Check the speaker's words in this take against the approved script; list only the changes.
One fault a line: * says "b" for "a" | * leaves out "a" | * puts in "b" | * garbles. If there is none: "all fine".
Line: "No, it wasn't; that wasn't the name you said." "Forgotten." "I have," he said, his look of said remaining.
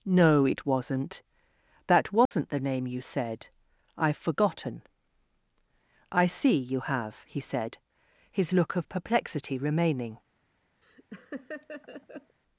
* puts in "I've"
* puts in "see you"
* says "perplexity" for "said"